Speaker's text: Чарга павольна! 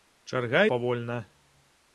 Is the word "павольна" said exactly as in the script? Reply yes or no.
yes